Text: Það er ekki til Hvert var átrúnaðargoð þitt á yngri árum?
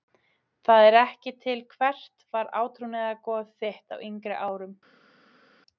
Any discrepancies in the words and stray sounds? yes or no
no